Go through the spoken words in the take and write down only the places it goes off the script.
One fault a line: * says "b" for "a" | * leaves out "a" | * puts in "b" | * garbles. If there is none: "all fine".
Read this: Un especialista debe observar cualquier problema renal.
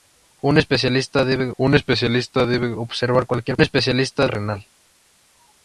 * puts in "un especialista debe"
* says "especialista" for "problema"